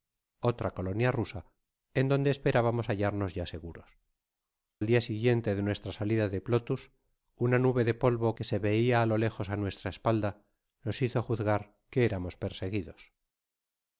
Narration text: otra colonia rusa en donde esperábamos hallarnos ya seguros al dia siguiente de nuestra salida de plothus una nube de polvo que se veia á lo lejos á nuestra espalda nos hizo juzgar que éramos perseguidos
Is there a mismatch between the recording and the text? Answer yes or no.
no